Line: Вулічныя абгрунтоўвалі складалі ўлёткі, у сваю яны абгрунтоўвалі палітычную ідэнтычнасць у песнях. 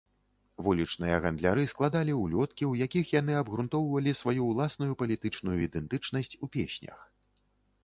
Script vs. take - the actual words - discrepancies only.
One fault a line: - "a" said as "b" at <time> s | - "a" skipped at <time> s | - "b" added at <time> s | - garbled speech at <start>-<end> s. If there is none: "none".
- "абгрунтоўвалі" said as "гандляры" at 1.2 s
- "сваю" said as "якіх" at 2.9 s
- "сваю ўласную" added at 4.2 s